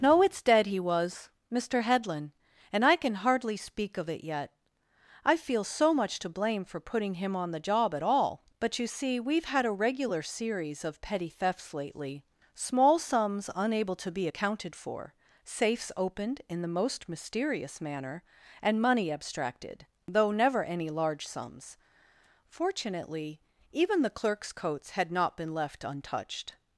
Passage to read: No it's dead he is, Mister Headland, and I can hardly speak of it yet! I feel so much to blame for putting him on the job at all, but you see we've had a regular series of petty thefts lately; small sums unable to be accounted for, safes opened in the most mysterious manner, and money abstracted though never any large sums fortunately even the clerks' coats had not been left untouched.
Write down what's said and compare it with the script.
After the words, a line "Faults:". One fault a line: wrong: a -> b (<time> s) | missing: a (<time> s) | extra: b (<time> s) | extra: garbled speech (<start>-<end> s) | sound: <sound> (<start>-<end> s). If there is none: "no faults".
No it's dead he was, Mister Headland, and I can hardly speak of it yet! I feel so much to blame for putting him on the job at all, but you see we've had a regular series of petty thefts lately; small sums unable to be accounted for, safes opened in the most mysterious manner, and money abstracted though never any large sums fortunately even the clerks' coats had not been left untouched.
Faults:
wrong: is -> was (0.8 s)